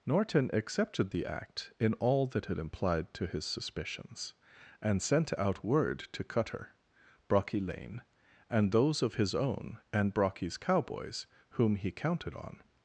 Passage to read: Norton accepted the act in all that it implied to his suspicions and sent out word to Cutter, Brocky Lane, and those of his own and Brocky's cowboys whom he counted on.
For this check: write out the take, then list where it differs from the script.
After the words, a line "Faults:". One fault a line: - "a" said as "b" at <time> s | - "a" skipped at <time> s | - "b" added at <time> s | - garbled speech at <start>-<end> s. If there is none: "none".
Norton accepted the act in all that it implied to his suspicions and sent out word to Cutter, Brocky Lane, and those of his own and Brocky's cowboys whom he counted on.
Faults:
none